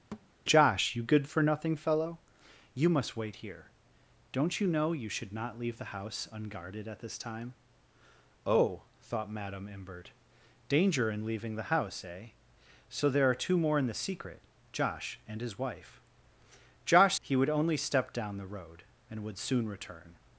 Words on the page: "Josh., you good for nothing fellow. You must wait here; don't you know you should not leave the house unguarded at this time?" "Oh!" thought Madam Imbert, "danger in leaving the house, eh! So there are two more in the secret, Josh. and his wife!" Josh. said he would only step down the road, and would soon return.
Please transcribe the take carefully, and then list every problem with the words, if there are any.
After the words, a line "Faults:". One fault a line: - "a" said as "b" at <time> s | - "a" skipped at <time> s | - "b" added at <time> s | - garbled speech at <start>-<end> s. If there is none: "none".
"Josh., you good for nothing fellow. You must wait here; don't you know you should not leave the house unguarded at this time?" "Oh!" thought Madam Imbert, "danger in leaving the house, eh! So there are two more in the secret, Josh. and his wife!" Josh. he would only step down the road, and would soon return.
Faults:
- "said" skipped at 17.2 s